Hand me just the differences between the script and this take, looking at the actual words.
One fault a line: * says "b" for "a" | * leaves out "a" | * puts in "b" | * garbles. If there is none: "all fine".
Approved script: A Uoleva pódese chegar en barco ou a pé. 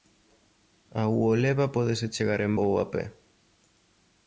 * leaves out "barco"